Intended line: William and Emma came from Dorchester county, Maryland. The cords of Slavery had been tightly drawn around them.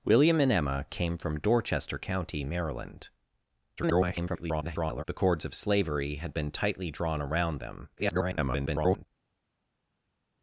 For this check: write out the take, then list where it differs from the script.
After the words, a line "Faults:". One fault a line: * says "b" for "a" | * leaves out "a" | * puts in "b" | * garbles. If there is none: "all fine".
William and Emma came from Dorchester county, Maryland. [garbled] The cords of Slavery had been tightly drawn around them. [garbled]
Faults:
* garbles
* garbles